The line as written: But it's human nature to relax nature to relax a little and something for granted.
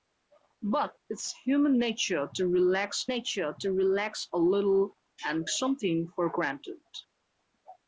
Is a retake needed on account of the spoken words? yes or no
no